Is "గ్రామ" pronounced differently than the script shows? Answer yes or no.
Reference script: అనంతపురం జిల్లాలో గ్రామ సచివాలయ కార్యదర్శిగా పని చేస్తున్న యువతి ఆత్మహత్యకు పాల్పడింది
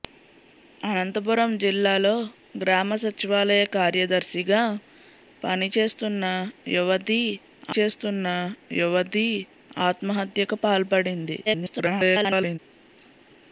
no